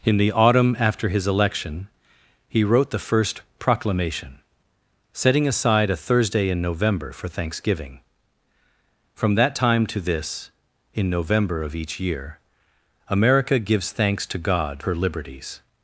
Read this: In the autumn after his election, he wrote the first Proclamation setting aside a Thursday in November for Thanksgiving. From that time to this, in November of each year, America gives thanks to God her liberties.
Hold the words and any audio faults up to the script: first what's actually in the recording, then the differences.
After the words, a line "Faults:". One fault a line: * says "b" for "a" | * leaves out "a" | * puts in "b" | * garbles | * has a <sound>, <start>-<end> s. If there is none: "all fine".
In the autumn after his election, he wrote the first Proclamation setting aside a Thursday in November for Thanksgiving. From that time to this, in November of each year, America gives thanks to God her liberties.
Faults:
all fine